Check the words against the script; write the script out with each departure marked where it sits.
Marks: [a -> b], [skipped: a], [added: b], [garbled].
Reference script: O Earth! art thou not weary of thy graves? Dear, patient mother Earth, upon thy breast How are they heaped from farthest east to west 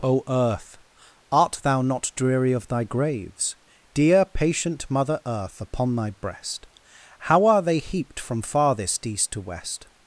O Earth! art thou not [weary -> dreary] of thy graves? Dear, patient mother Earth, upon thy breast How are they heaped from farthest east to west